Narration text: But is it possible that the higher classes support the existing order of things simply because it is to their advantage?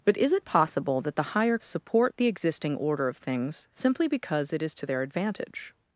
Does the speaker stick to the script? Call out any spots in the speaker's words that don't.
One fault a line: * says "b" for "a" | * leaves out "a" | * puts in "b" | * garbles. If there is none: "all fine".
* leaves out "classes"